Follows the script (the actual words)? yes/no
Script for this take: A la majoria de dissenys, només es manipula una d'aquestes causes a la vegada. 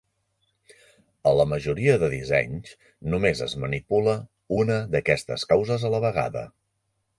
yes